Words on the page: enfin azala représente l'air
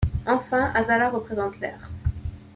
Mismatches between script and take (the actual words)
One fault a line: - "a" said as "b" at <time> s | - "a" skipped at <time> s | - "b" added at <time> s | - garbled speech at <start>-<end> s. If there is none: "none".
none